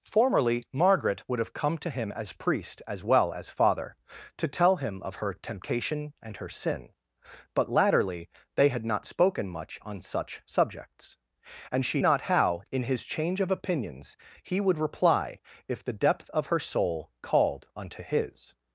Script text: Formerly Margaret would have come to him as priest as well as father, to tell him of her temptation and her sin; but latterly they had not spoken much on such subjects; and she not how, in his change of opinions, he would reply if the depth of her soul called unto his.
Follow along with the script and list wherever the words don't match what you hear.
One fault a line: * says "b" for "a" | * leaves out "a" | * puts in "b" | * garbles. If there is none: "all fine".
all fine